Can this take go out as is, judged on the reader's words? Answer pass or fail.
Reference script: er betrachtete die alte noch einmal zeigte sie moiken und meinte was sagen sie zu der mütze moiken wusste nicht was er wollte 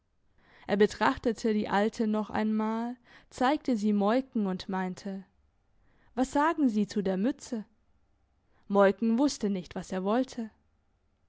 pass